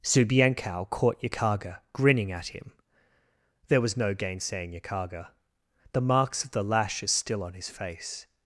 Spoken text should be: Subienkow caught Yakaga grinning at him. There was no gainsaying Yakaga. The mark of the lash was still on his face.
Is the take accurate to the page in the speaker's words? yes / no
no